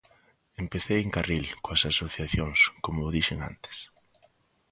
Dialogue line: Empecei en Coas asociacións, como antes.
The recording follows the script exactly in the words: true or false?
false